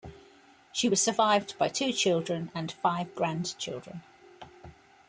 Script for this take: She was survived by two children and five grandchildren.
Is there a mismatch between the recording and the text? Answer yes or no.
no